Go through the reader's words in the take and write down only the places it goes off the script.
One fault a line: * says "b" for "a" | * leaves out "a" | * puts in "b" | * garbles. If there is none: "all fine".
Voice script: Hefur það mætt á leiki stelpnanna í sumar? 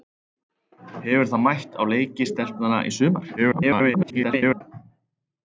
* garbles